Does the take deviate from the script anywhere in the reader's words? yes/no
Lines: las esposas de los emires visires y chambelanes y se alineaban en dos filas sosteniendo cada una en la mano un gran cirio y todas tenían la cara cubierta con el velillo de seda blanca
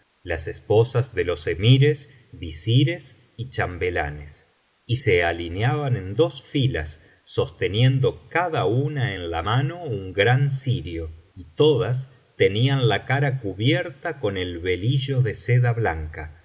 no